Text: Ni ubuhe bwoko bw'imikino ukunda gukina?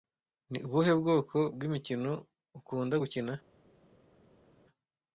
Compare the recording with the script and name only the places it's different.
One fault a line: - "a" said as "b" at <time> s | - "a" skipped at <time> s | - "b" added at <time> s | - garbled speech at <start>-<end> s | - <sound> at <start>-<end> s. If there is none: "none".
none